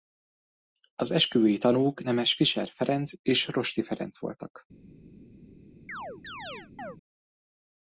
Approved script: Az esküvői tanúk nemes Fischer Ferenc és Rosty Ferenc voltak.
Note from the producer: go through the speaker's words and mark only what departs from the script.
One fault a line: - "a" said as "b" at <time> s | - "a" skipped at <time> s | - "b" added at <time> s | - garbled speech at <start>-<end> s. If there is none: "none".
none